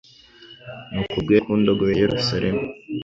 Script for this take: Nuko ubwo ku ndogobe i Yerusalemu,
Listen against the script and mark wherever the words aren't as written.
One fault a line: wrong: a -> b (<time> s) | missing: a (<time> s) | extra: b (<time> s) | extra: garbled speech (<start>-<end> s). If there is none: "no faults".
no faults